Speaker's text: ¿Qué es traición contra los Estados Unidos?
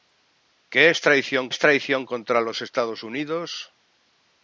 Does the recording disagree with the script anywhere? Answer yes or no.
yes